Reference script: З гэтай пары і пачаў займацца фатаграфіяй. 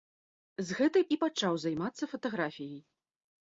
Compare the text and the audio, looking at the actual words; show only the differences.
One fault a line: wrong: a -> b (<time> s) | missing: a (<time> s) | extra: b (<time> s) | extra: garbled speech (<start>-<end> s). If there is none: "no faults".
missing: пары (1.0 s)